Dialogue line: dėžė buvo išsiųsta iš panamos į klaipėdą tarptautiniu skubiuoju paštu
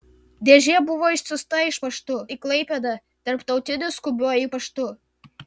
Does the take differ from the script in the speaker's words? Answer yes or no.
yes